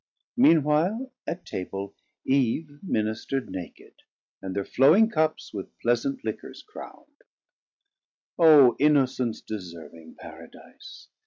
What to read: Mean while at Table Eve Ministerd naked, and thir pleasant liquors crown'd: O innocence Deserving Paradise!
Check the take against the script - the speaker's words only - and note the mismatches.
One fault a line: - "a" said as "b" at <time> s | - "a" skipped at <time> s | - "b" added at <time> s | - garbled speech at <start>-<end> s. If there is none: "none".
- "flowing cups With" added at 4.6 s